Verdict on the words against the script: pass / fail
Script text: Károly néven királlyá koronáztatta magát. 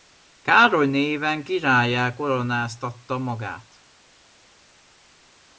pass